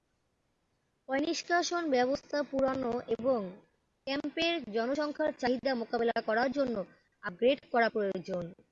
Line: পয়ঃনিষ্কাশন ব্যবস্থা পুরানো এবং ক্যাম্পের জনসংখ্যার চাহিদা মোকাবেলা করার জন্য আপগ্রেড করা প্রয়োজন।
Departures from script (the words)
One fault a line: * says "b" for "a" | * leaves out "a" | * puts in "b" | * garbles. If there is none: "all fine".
all fine